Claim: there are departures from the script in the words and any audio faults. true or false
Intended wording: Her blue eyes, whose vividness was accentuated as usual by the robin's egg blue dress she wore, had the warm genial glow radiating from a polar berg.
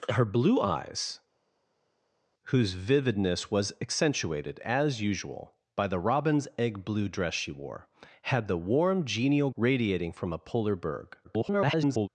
true